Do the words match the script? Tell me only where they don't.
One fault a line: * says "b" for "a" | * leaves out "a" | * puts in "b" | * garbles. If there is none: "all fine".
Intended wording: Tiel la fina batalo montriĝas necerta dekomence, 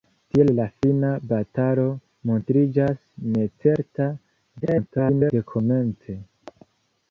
* garbles